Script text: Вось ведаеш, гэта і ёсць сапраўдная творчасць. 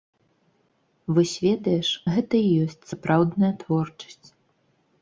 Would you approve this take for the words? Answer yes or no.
yes